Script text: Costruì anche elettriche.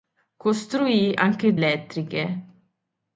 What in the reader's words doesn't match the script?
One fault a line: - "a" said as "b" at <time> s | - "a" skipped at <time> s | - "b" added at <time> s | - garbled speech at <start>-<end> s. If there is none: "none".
none